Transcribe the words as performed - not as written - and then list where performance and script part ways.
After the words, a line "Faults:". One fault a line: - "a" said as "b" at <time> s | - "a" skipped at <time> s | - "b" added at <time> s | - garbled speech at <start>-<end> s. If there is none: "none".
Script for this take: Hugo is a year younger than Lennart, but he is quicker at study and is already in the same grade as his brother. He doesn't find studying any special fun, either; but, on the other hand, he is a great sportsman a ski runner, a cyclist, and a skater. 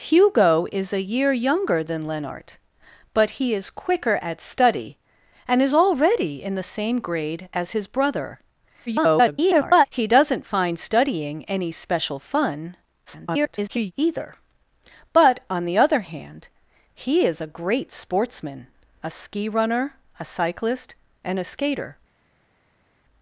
Hugo is a year younger than Lennart, but he is quicker at study and is already in the same grade as his brother. [garbled] He doesn't find studying any special fun, [garbled] either; but, on the other hand, he is a great sportsman a ski runner, a cyclist, and a skater.
Faults:
- garbled speech at 8.9-9.9 s
- garbled speech at 13.1-13.9 s